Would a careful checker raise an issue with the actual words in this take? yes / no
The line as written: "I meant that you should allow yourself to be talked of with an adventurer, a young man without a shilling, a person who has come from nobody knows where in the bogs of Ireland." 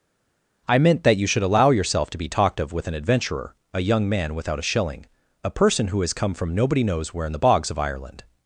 no